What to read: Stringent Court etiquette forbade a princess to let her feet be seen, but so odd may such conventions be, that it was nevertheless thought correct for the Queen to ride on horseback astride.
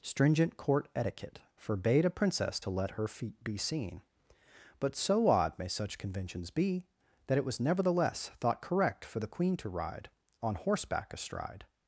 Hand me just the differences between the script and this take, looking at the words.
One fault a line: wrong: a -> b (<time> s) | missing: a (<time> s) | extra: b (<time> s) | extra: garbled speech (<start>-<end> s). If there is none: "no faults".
no faults